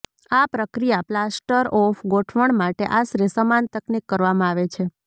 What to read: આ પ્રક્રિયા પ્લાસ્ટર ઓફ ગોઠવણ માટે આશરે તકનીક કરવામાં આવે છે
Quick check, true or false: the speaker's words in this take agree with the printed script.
false